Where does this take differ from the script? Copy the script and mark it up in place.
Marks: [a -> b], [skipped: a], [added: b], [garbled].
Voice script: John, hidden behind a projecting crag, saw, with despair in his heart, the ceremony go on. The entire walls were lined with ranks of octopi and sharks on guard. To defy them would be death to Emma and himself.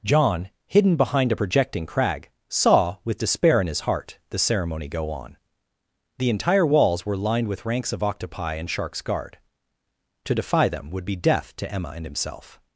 John, hidden behind a projecting crag, saw, with despair in his heart, the ceremony go on. The entire walls were lined with ranks of octopi and sharks [skipped: on] guard. To defy them would be death to Emma and himself.